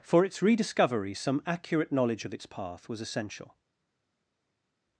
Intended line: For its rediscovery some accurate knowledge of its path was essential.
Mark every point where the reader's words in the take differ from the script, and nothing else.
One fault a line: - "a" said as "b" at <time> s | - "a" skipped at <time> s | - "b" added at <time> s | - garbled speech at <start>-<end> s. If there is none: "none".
none